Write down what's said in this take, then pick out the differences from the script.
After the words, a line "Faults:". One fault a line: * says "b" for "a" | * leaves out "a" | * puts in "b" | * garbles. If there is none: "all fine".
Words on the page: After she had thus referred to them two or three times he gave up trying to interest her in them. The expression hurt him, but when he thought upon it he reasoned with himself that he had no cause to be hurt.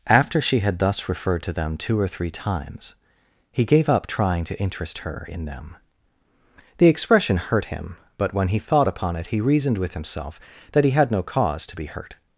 After she had thus referred to them two or three times he gave up trying to interest her in them. The expression hurt him, but when he thought upon it he reasoned with himself that he had no cause to be hurt.
Faults:
all fine